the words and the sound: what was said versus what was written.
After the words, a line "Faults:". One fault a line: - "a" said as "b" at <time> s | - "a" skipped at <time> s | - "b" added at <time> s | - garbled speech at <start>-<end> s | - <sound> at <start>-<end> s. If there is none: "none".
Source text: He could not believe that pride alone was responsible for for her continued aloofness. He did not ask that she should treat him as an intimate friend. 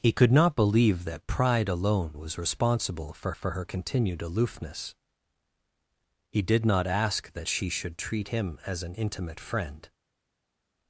He could not believe that pride alone was responsible for for her continued aloofness. He did not ask that she should treat him as an intimate friend.
Faults:
none